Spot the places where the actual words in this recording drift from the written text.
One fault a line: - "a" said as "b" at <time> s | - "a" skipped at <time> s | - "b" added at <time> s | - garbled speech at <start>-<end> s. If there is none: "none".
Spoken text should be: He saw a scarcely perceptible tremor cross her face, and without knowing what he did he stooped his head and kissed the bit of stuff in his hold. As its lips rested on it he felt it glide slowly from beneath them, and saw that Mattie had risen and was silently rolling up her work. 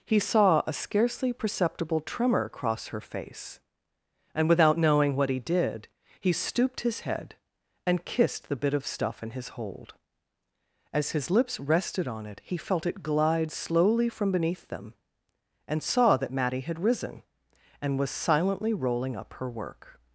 - "its" said as "his" at 11.1 s